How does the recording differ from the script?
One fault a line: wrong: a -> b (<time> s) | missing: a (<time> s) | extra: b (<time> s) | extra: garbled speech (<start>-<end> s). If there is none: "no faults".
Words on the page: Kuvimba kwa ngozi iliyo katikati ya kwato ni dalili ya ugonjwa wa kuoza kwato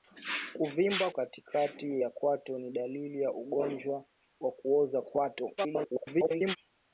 missing: kwa ngozi iliyo (1.1 s)
extra: garbled speech (5.6-6.6 s)